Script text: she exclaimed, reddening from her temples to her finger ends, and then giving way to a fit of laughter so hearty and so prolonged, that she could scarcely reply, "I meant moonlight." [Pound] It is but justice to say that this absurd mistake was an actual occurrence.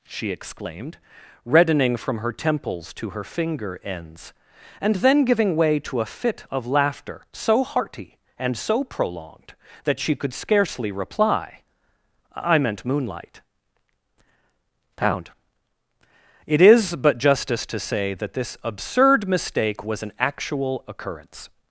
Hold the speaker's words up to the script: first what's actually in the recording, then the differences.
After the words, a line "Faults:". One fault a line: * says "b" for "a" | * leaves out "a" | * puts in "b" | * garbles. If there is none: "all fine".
she exclaimed, reddening from her temples to her finger ends, and then giving way to a fit of laughter so hearty and so prolonged, that she could scarcely reply, "I meant moonlight." [Pound] It is but justice to say that this absurd mistake was an actual occurrence.
Faults:
all fine